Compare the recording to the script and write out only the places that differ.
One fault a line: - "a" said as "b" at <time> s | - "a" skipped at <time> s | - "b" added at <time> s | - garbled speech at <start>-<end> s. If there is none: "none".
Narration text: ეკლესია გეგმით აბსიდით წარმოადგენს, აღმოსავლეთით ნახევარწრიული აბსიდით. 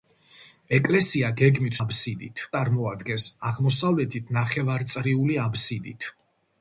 none